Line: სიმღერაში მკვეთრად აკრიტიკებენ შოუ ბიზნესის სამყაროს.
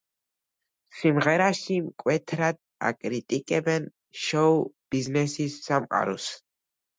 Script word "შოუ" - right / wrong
right